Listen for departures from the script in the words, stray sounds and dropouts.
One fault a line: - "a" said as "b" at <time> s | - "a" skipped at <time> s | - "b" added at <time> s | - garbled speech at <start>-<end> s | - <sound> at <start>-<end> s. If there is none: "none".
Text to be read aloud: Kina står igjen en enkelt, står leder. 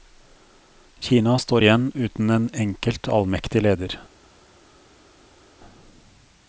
- "uten" added at 1.9 s
- "står" said as "allmektig" at 3.1 s